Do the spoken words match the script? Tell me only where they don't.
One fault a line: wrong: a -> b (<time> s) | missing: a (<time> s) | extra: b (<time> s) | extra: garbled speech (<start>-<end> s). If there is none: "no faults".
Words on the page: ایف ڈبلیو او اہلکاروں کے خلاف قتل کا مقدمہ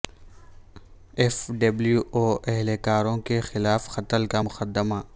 no faults